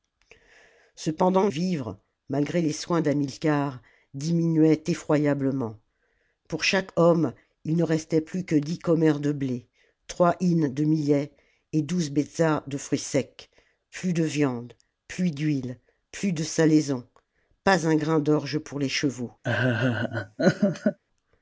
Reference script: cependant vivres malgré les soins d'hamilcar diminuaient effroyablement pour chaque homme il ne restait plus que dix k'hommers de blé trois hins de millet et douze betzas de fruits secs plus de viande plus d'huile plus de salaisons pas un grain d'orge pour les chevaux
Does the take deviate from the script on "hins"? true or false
false